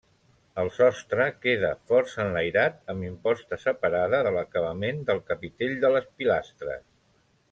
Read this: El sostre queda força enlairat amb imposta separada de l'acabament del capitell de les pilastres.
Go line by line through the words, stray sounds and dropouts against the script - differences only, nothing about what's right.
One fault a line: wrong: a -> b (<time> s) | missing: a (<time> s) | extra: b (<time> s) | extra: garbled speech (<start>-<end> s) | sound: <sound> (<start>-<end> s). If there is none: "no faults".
no faults